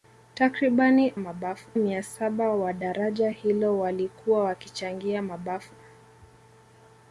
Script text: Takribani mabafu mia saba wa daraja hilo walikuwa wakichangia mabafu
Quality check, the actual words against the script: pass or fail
pass